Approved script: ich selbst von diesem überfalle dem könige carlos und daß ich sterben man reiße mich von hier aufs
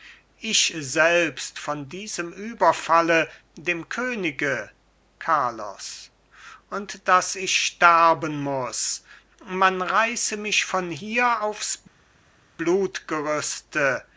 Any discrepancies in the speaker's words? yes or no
yes